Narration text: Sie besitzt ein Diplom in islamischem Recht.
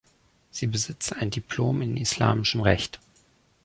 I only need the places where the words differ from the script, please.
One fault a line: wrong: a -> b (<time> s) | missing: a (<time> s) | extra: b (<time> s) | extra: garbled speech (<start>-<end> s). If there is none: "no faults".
no faults